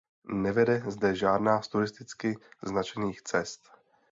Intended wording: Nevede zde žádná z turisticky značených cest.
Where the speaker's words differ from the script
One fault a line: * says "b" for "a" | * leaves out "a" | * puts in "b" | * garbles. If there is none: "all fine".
all fine